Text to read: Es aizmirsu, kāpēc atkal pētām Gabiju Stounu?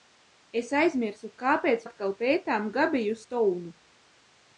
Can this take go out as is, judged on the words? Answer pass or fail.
pass